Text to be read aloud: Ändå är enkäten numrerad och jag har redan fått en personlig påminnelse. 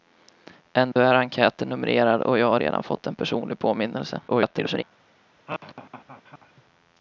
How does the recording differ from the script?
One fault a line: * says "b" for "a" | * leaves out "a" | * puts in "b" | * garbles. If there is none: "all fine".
* garbles